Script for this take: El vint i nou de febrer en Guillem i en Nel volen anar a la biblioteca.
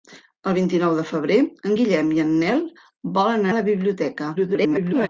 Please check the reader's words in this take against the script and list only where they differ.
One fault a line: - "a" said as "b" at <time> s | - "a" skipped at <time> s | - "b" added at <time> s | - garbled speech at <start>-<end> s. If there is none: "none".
- "anar" skipped at 3.5 s
- garbled speech at 4.4-5.1 s